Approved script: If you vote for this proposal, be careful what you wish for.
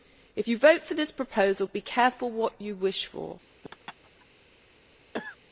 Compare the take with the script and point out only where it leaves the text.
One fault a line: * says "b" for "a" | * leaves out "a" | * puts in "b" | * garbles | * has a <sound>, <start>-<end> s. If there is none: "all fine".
* has a laugh, 3.6-4.3 s
* has a cough, 5.1-5.4 s